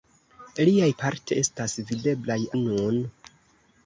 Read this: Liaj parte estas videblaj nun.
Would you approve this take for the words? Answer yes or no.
yes